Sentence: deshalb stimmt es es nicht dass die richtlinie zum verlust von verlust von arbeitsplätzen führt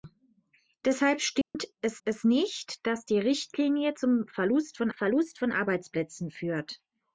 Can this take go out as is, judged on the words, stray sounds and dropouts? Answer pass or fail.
fail